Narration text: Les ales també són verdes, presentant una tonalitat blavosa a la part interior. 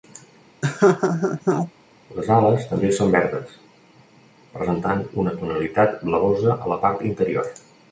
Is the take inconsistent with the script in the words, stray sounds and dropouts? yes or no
yes